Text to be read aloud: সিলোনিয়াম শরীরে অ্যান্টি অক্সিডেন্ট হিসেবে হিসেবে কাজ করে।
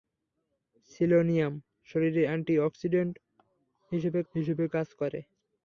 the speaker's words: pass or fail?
pass